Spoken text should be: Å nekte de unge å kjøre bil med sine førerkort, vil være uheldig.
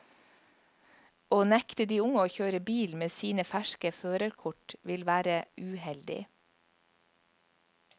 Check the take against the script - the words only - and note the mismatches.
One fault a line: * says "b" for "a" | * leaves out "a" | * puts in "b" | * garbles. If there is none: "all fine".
* puts in "ferske"